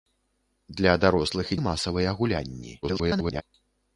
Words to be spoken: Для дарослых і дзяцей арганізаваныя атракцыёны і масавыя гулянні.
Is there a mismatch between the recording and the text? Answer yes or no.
yes